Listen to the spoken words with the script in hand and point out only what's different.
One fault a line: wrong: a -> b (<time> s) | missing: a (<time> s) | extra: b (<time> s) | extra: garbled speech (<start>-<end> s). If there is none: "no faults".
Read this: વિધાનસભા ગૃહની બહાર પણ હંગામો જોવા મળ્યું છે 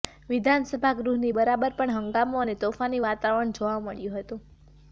extra: અને તોફાની વાતાવરણ (2.4 s)
wrong: છે -> હતું (4.2 s)